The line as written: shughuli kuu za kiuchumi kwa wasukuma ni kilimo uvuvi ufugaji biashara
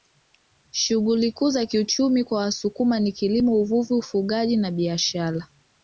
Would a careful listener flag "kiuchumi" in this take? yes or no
no